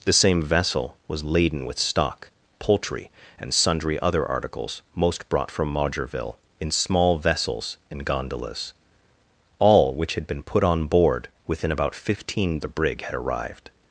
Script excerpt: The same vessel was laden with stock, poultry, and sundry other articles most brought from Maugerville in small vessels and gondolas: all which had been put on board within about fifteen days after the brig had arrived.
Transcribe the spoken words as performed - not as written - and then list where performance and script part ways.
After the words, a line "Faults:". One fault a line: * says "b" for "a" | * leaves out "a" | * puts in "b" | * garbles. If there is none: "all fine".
The same vessel was laden with stock, poultry, and sundry other articles most brought from Maugerville in small vessels and gondolas: all which had been put on board within about fifteen the brig had arrived.
Faults:
* leaves out "days after"